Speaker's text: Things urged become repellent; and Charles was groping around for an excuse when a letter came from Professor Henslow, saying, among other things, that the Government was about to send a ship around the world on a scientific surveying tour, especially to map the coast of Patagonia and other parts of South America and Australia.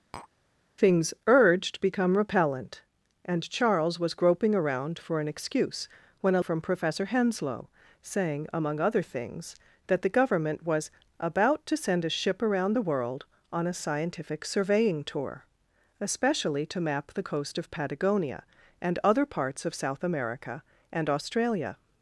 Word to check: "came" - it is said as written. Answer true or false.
false